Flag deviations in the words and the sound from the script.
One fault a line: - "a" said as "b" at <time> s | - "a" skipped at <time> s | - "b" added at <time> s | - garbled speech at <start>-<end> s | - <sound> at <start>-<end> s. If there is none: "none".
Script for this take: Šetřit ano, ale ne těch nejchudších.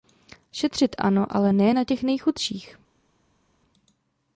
- "na" added at 1.7 s